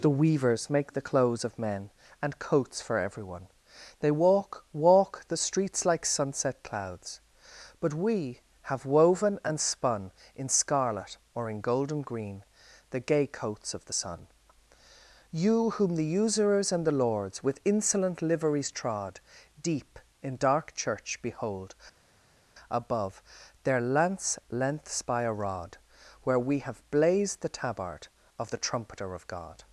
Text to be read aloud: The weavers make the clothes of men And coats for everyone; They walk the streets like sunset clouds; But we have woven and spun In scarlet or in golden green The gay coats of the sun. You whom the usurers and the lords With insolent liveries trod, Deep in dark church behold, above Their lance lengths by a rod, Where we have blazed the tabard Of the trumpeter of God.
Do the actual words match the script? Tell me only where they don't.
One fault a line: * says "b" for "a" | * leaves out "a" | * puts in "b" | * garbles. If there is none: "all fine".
* puts in "walk"